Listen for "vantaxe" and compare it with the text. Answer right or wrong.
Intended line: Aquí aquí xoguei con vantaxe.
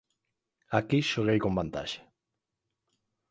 right